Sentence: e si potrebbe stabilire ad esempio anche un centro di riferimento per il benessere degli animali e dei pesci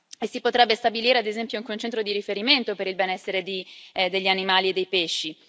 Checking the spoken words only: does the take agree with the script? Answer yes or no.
yes